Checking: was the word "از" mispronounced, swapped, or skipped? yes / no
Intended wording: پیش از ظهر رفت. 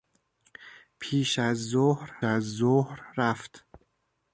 no